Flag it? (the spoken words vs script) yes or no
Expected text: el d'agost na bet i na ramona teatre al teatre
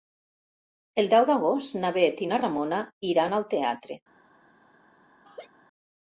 yes